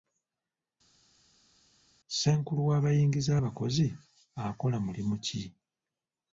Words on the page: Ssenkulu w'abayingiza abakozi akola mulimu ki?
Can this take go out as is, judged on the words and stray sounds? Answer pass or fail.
pass